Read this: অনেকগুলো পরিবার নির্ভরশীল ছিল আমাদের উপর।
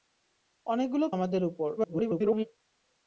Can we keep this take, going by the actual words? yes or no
no